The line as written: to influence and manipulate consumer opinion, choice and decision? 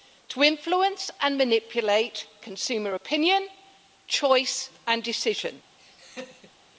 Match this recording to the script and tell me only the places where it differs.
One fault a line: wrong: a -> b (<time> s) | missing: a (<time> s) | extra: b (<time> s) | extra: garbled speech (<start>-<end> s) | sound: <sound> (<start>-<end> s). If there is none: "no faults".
sound: laugh (5.8-6.6 s)